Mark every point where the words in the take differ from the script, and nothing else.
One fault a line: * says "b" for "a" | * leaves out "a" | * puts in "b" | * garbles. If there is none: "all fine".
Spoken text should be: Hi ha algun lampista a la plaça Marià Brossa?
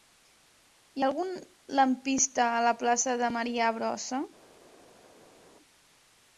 * puts in "de"